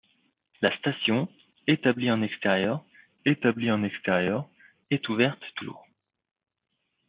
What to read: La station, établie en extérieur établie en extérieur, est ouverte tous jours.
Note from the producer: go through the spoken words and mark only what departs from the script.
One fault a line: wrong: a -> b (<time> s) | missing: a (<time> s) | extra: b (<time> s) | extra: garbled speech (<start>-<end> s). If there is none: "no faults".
no faults